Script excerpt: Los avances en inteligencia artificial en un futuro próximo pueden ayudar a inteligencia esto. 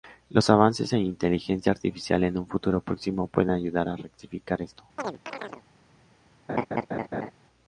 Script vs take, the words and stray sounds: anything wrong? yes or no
yes